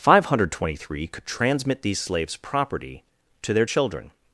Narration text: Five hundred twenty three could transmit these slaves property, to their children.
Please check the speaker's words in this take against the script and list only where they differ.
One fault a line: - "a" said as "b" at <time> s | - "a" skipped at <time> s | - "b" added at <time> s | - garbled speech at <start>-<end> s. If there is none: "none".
none